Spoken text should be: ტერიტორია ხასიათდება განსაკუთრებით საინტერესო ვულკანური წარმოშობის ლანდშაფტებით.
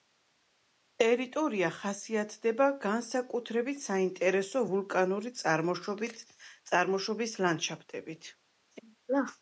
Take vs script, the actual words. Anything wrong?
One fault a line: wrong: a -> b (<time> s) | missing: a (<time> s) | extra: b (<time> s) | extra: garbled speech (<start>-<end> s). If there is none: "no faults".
no faults